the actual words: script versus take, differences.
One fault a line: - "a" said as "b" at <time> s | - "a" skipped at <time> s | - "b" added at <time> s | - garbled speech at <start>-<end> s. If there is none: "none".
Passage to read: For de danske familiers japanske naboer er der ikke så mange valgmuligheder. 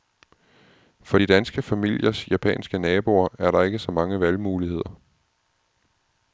none